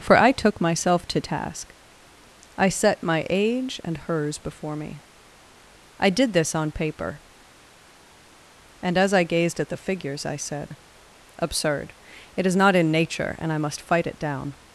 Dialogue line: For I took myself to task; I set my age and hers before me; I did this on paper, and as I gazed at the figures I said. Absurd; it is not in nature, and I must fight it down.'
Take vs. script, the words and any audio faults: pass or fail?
pass